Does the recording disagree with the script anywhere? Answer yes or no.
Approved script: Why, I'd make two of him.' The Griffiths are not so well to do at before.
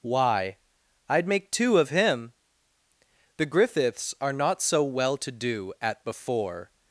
no